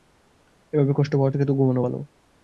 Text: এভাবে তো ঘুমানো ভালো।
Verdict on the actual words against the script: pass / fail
fail